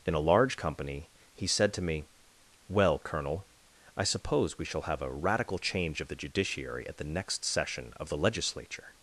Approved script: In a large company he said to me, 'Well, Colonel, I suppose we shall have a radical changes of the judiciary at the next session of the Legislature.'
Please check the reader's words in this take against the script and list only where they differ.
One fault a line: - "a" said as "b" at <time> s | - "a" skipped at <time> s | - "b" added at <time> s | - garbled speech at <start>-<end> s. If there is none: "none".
- "changes" said as "change" at 5.6 s